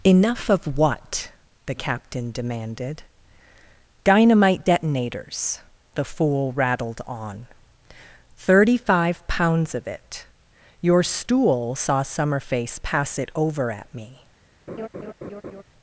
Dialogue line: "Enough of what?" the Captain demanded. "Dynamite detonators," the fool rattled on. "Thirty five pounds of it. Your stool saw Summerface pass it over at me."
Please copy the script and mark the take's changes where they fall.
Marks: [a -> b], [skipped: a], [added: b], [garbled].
"Enough of what?" the Captain demanded. "Dynamite detonators," the fool rattled on. "Thirty five pounds of it. Your stool saw Summerface pass it over at me."